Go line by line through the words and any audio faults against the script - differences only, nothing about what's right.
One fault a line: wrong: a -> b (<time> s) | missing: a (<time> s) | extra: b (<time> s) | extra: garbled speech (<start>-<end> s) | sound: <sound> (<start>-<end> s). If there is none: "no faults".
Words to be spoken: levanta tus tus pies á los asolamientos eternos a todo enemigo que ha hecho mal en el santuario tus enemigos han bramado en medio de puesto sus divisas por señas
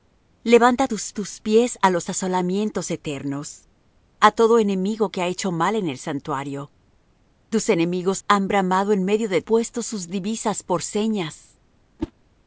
sound: whoosh (12.0-12.1 s)